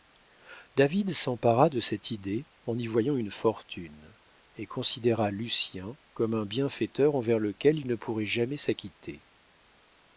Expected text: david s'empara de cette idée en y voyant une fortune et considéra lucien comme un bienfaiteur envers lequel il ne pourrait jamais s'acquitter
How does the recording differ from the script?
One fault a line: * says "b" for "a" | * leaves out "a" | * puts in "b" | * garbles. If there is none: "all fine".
all fine